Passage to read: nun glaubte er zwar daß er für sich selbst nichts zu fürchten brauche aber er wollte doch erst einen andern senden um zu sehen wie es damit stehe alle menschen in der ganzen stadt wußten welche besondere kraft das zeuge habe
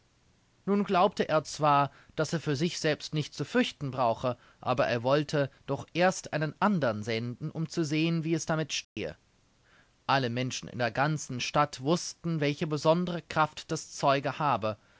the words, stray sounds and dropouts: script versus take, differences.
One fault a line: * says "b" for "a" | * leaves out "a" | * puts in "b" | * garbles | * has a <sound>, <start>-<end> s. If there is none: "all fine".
* has a dropout, 8.8-9.0 s